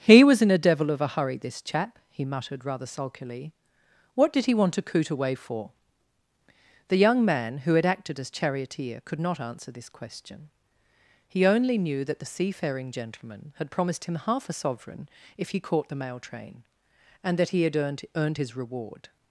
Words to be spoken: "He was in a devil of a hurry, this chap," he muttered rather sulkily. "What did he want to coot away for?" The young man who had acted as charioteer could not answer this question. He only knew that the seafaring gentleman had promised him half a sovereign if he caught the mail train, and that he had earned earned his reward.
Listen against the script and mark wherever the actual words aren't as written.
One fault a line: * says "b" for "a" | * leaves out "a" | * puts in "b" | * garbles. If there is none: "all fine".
all fine